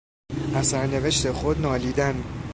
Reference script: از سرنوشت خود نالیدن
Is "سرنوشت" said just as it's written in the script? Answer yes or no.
yes